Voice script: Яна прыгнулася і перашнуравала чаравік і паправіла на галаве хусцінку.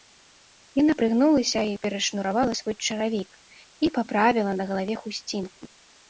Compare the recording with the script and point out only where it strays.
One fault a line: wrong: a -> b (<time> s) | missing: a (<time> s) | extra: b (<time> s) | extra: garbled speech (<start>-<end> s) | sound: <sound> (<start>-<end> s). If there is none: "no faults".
extra: свой (2.6 s)